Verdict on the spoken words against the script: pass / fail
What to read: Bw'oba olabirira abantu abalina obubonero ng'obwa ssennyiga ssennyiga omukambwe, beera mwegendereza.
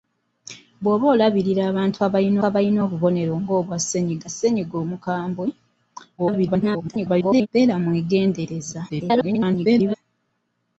fail